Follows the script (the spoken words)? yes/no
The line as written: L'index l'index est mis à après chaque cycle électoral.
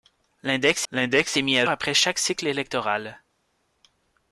yes